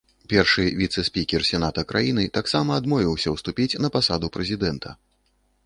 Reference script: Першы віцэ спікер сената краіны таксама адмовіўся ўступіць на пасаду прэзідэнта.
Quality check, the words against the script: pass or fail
pass